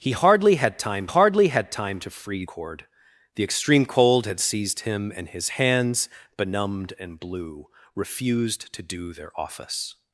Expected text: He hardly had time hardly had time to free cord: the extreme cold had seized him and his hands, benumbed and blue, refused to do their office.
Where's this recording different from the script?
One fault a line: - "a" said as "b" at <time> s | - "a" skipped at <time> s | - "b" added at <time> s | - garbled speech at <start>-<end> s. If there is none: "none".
none